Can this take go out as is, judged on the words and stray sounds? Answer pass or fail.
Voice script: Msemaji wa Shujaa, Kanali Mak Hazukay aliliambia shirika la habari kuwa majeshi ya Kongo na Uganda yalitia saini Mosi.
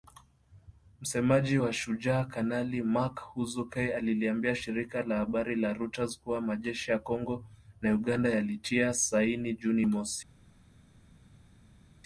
fail